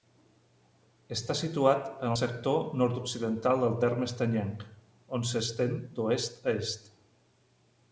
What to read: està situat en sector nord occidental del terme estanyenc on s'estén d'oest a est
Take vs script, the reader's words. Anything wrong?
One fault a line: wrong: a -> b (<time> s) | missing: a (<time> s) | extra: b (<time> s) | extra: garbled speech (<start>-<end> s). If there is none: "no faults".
no faults